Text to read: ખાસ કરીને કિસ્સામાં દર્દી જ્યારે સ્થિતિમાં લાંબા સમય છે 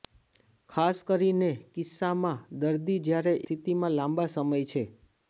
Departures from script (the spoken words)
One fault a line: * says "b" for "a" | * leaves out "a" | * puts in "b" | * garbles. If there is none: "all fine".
all fine